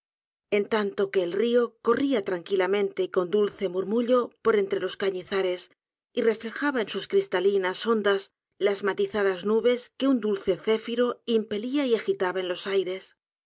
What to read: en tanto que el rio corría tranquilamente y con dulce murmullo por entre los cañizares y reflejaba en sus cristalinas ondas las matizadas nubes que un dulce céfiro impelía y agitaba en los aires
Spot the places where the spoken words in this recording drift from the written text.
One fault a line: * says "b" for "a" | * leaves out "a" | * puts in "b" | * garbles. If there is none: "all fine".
all fine